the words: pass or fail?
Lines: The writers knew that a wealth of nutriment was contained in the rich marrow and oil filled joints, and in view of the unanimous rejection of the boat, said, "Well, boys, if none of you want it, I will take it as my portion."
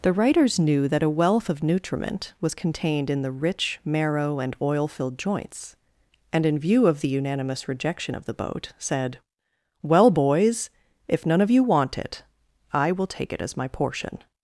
pass